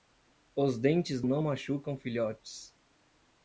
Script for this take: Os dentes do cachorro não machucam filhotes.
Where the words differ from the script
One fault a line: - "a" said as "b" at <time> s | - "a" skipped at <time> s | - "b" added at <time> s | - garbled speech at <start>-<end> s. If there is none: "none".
- "do cachorro" skipped at 1.2 s